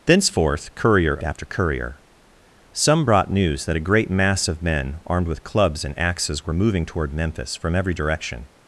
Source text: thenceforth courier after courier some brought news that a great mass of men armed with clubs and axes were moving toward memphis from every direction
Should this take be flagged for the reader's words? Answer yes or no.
no